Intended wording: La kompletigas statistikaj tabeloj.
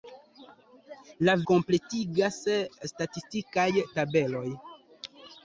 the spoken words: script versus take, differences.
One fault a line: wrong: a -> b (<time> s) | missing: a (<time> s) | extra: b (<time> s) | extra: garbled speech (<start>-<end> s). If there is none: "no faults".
no faults